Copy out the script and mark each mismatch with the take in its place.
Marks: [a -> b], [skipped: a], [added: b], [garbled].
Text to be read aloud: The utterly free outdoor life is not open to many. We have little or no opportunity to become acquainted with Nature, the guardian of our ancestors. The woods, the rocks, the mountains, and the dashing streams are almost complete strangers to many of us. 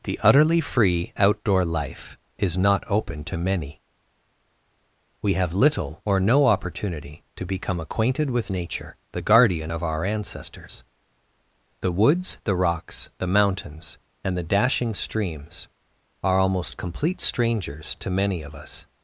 The utterly free outdoor life is not open to many. We have little or no opportunity to become acquainted with Nature, the guardian of our ancestors. The woods, the rocks, the mountains, and the dashing streams are almost complete strangers to many of us.